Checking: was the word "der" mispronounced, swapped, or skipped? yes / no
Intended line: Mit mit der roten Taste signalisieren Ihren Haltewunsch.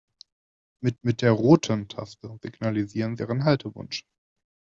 no